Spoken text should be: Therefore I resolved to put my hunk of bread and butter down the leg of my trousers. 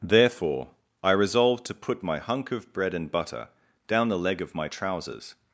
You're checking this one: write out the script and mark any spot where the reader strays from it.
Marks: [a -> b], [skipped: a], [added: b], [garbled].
Therefore I resolved to put my hunk of bread and butter down the leg of my trousers.